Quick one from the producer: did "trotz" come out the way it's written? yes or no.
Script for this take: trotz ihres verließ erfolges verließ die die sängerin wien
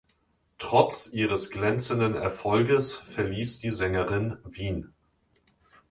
yes